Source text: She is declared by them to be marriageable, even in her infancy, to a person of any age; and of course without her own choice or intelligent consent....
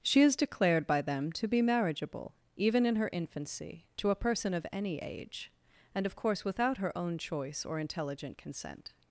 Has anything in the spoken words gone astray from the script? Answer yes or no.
no